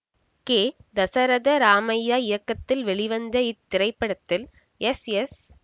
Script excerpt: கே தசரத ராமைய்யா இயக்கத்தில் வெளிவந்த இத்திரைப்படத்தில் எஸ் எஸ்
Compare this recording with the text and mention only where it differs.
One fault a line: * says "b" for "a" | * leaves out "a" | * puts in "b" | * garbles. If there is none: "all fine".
all fine